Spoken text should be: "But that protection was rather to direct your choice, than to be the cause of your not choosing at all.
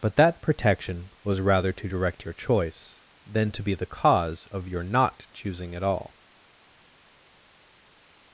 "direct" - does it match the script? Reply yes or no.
yes